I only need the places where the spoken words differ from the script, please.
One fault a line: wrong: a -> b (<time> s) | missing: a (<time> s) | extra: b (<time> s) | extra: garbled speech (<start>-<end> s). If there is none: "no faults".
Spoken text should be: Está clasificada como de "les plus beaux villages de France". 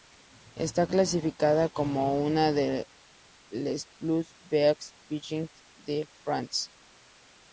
extra: una (2.2 s)